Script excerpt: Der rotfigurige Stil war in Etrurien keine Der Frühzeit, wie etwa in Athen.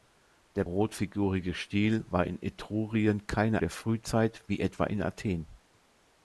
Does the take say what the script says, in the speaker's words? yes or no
yes